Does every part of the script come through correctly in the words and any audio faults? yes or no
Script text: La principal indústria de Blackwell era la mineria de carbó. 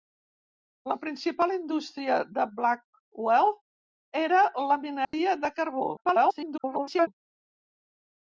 no